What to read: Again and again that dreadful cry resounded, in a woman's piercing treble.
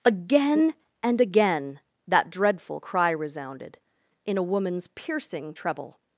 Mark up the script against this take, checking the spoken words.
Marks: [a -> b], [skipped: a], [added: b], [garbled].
Again and again that dreadful cry resounded, in a woman's piercing treble.